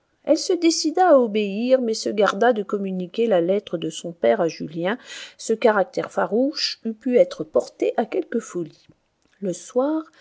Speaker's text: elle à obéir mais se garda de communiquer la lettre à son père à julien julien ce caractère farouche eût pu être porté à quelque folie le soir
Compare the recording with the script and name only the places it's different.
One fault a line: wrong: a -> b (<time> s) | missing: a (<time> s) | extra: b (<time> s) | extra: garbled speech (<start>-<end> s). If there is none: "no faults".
extra: se décida (0.4 s)
wrong: à -> de (3.8 s)
missing: julien (5.0 s)